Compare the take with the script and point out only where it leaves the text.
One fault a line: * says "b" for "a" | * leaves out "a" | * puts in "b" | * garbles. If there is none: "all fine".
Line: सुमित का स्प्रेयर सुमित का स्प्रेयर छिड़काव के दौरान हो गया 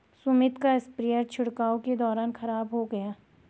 * leaves out "सुमित का स्प्रेयर"
* puts in "खराब"